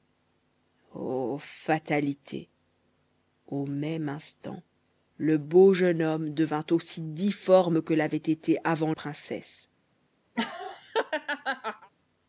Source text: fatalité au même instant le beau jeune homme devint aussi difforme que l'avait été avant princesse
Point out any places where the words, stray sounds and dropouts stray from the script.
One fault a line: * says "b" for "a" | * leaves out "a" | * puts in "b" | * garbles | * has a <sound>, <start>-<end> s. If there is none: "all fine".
* has a laugh, 10.4-11.9 s